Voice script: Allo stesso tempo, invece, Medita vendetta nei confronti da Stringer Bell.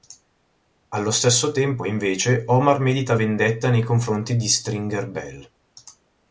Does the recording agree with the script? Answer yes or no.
no